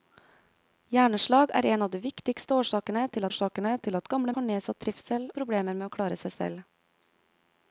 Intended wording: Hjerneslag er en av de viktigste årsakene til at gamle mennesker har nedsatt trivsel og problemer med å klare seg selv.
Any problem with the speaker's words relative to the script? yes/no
yes